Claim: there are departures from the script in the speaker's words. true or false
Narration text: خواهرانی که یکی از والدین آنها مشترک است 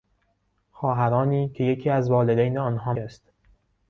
true